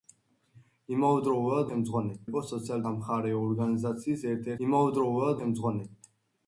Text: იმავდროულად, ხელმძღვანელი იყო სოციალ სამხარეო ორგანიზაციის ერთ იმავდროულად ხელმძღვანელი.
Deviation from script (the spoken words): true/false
false